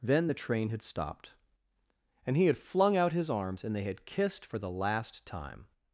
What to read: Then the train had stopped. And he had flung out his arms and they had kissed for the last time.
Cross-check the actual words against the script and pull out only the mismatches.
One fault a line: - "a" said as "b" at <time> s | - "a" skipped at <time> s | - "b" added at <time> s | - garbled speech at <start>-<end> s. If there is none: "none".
none